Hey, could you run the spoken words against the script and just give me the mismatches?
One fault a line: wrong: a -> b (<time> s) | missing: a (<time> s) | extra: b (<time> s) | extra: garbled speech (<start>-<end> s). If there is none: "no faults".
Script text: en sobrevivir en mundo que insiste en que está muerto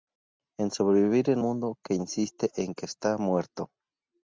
no faults